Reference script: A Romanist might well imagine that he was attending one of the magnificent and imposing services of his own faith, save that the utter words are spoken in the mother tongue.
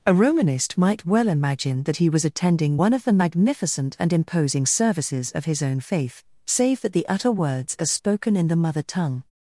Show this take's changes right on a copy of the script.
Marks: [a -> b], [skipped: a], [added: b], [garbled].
A Romanist might well imagine that he was attending one of the magnificent and imposing services of his own faith, save that the utter words are spoken in the mother tongue.